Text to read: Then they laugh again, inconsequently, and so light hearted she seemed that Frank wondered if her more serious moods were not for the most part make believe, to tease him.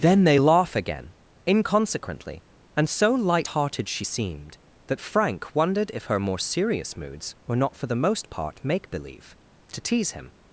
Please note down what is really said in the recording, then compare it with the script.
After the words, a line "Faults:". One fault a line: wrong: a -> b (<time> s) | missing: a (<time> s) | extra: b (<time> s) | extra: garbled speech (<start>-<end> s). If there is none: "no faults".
Then they laugh again, inconsequently, and so light hearted she seemed that Frank wondered if her more serious moods were not for the most part make believe, to tease him.
Faults:
no faults